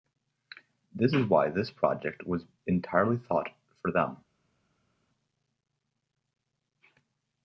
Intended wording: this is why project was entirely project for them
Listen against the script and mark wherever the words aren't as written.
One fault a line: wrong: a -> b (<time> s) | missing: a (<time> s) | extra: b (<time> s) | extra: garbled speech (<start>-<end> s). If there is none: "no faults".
extra: this (1.5 s)
wrong: project -> thought (3.3 s)